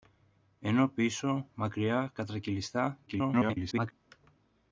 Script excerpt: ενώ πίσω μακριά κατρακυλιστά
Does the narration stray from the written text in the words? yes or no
yes